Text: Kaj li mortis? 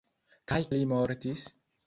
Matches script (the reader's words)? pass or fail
pass